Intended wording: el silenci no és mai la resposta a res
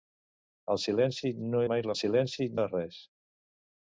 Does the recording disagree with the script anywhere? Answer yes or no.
yes